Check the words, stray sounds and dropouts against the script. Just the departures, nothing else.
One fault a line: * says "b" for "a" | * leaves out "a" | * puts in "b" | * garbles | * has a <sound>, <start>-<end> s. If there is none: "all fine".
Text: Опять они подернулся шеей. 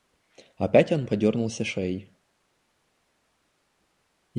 * says "он" for "они"